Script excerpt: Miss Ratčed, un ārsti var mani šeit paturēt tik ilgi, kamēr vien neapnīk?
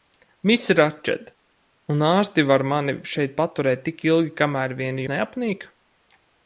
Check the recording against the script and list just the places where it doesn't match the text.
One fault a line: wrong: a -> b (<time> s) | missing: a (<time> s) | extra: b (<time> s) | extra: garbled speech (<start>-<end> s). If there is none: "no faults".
no faults